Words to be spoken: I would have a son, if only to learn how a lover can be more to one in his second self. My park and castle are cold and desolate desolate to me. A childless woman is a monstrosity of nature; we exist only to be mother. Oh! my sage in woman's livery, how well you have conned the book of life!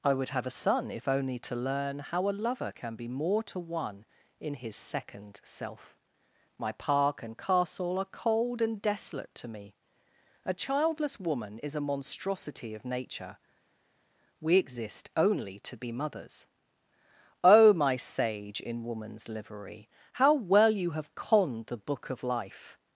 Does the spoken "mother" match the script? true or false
false